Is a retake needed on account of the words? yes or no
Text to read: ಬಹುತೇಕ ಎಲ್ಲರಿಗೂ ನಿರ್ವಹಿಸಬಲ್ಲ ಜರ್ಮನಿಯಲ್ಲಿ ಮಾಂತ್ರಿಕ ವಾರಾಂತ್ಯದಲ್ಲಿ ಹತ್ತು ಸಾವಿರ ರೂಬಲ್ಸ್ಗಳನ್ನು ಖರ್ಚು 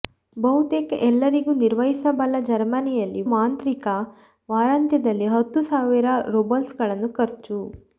no